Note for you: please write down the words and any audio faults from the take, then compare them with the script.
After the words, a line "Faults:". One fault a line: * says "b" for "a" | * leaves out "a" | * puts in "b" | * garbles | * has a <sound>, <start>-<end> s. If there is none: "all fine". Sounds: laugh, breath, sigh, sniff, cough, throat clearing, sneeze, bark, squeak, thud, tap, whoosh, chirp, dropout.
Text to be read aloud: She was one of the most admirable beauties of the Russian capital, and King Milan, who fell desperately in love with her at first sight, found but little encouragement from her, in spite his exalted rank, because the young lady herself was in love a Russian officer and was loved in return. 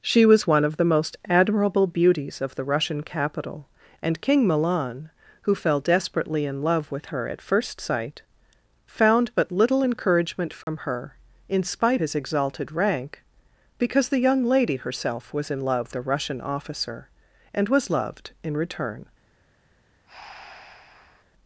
She was one of the most admirable beauties of the Russian capital, and King Milan, who fell desperately in love with her at first sight, found but little encouragement from her, in spite his exalted rank, because the young lady herself was in love a Russian officer and was loved in return.
Faults:
* has a dropout, 10.6-10.7 s
* has a breath, 20.1-21.2 s